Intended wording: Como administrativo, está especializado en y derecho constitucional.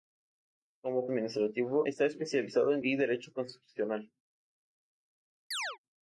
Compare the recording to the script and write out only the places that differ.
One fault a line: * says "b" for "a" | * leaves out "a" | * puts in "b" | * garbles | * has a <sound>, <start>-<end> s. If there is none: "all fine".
* has a chirp, 5.5-5.8 s